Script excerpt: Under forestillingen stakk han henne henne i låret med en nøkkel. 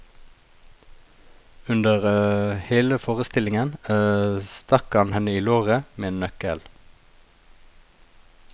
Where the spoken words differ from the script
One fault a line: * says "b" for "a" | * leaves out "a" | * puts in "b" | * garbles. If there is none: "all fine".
* puts in "hele"
* leaves out "henne"